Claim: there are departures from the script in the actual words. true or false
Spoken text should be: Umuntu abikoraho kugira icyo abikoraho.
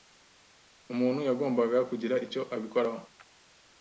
true